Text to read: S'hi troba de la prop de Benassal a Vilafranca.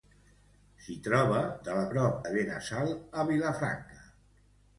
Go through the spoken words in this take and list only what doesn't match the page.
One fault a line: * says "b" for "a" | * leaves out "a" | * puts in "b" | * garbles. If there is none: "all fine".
all fine